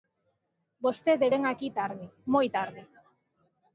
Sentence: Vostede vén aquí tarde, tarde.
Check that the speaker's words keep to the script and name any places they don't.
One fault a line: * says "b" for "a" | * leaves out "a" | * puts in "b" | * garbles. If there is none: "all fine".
* puts in "moi"